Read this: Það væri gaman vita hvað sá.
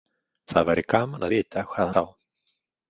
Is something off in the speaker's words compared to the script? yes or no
no